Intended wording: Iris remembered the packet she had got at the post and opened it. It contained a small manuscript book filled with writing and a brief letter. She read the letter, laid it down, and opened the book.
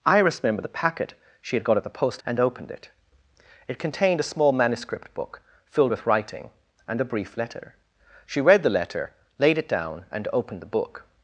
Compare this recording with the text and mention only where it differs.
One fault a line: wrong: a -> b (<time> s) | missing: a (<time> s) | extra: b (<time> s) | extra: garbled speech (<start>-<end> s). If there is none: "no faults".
no faults